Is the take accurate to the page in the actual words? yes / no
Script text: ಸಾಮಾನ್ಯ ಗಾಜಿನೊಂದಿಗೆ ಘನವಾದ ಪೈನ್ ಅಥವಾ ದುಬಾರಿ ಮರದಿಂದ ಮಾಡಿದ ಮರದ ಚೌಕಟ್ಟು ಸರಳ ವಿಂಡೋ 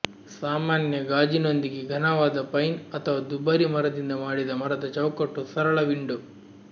yes